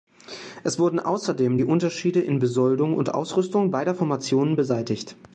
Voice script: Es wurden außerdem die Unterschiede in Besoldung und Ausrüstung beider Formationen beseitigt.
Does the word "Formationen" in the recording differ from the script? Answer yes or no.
no